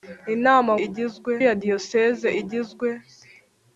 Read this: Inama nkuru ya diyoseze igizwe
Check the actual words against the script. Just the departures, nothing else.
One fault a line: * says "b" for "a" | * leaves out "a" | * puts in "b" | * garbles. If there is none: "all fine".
* says "igizwe" for "nkuru"